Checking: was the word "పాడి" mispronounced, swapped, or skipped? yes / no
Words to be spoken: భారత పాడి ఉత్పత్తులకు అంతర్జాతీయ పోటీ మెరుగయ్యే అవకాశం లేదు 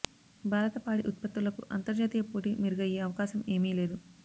no